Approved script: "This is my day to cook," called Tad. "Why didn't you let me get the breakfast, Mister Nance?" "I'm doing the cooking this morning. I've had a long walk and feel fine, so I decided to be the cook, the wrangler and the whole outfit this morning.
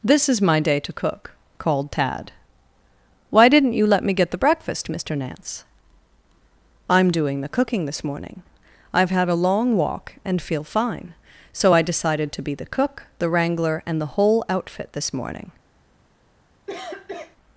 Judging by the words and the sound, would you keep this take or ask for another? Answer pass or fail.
fail